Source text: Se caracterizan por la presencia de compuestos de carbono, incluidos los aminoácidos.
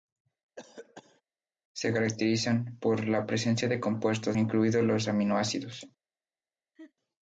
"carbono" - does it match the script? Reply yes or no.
no